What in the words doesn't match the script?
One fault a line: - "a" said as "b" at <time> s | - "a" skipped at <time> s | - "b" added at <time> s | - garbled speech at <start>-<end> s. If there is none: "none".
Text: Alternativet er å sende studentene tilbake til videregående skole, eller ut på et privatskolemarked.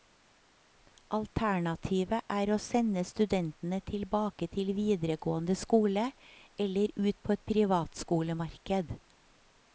none